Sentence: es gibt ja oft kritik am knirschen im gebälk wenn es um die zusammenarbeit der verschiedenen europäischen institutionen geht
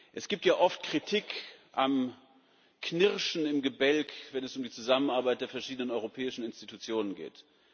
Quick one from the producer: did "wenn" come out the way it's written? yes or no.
yes